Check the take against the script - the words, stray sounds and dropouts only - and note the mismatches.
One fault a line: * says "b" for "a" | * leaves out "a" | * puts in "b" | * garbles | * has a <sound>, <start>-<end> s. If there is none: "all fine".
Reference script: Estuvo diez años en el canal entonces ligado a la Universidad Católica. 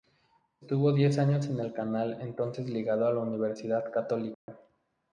* has a dropout, 4.3-4.5 s